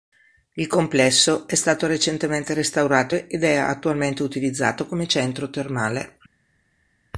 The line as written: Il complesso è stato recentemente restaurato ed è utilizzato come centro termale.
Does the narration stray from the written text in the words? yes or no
yes